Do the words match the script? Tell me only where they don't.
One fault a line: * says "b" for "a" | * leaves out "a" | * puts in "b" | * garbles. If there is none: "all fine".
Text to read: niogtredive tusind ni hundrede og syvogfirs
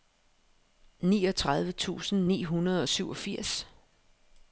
all fine